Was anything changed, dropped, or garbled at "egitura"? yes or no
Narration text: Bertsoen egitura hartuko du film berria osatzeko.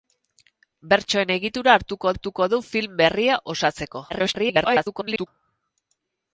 no